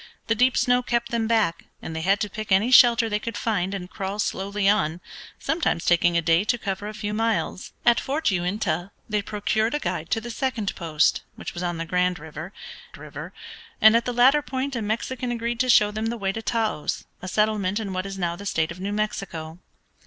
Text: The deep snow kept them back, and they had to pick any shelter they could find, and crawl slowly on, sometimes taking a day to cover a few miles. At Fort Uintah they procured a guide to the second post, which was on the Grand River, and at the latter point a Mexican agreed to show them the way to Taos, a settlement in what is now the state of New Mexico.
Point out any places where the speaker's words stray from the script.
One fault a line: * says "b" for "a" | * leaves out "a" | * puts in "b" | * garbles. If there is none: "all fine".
* puts in "River"